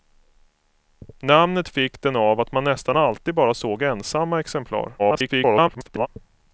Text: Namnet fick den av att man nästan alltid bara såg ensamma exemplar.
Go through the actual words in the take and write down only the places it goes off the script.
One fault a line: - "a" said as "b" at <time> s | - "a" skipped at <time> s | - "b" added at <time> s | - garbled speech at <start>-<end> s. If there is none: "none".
- garbled speech at 5.0-6.1 s